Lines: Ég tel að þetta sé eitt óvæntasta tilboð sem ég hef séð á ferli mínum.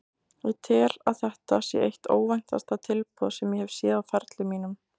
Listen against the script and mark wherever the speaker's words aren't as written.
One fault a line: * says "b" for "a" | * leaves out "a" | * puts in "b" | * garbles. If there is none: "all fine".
all fine